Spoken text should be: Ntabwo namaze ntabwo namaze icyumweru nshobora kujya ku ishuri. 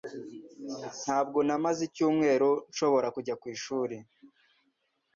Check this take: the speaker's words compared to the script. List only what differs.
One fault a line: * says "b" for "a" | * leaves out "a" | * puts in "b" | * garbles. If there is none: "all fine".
* leaves out "ntabwo namaze"